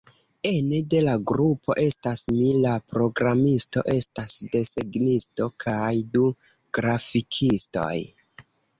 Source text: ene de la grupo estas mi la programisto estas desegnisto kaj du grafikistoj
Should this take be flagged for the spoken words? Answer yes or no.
no